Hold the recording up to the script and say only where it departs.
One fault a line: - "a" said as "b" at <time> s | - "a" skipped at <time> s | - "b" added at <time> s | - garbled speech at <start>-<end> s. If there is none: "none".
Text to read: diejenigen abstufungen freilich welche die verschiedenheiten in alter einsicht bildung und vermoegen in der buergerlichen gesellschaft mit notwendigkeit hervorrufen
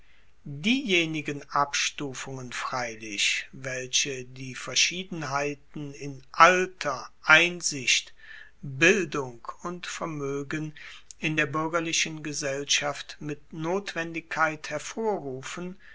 none